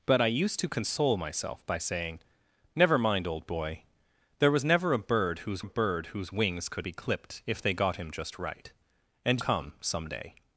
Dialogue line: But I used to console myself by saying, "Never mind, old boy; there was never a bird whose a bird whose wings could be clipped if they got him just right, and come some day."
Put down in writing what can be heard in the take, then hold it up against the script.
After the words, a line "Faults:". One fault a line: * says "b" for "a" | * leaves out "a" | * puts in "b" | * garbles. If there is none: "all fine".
But I used to console myself by saying, "Never mind, old boy; there was never a bird whose a bird whose wings could be clipped if they got him just right, and come some day."
Faults:
all fine